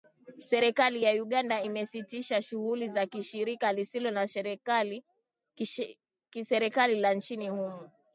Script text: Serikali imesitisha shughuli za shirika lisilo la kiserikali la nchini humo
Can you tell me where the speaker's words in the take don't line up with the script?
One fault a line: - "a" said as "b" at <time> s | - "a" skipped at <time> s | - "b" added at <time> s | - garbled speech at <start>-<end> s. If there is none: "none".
- "ya Uganda" added at 1.0 s